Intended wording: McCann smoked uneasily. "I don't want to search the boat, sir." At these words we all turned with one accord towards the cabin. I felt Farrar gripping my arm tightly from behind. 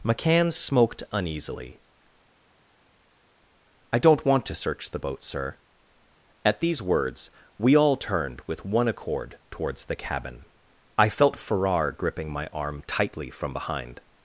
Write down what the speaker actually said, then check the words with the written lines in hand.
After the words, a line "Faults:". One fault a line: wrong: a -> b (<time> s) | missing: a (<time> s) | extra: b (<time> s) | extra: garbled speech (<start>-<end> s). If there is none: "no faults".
McCann smoked uneasily. "I don't want to search the boat, sir." At these words we all turned with one accord towards the cabin. I felt Farrar gripping my arm tightly from behind.
Faults:
no faults